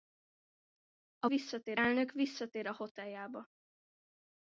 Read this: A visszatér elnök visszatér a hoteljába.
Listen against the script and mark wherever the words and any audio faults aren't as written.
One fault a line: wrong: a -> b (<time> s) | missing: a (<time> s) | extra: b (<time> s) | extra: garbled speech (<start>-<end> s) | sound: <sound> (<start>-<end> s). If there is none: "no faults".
no faults